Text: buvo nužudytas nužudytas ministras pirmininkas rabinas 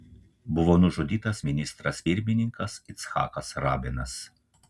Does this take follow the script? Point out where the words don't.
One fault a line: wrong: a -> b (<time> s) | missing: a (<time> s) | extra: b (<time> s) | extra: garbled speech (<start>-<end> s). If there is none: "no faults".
missing: nužudytas (1.4 s)
extra: icchakas (3.0 s)